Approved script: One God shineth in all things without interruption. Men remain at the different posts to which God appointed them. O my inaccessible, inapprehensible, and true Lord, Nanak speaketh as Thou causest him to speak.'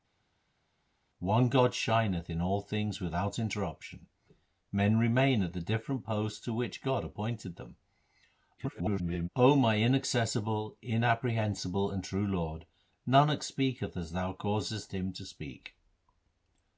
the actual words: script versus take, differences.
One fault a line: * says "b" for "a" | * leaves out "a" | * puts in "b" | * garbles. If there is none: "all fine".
* garbles